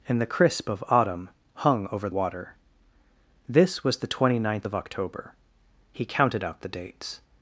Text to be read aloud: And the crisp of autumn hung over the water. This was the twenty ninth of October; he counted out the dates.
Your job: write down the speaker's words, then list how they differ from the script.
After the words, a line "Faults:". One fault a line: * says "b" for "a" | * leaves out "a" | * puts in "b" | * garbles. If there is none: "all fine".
And the crisp of autumn hung over water. This was the twenty ninth of October; he counted out the dates.
Faults:
* leaves out "the"